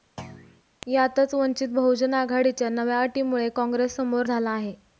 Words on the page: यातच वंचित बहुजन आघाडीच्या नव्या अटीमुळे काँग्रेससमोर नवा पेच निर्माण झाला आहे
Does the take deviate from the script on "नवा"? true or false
true